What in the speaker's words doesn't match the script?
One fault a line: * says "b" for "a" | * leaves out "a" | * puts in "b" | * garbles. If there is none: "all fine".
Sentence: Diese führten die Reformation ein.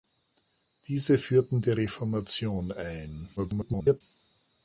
* garbles